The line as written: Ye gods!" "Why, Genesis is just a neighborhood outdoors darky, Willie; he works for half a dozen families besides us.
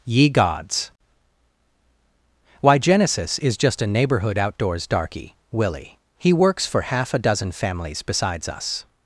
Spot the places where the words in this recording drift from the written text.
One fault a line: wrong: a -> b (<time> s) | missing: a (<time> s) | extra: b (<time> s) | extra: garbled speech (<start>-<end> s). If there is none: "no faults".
no faults